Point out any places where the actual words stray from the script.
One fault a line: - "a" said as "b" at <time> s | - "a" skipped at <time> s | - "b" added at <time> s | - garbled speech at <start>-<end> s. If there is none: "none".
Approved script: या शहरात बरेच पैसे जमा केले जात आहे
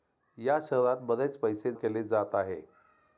- "जमा" skipped at 1.7 s